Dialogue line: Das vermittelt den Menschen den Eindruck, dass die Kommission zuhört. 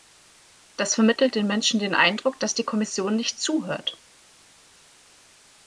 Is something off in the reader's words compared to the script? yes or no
yes